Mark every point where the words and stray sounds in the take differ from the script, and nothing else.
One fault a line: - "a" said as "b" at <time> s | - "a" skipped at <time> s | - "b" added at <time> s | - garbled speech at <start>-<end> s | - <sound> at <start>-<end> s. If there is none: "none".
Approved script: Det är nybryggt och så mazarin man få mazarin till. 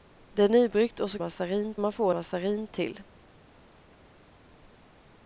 none